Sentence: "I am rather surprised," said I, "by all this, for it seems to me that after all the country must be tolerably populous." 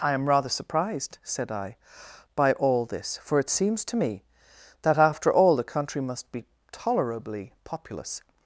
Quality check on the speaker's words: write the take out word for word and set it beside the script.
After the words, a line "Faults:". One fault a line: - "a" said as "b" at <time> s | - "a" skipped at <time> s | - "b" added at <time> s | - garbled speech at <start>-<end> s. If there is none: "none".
"I am rather surprised," said I, "by all this, for it seems to me that after all the country must be tolerably populous."
Faults:
none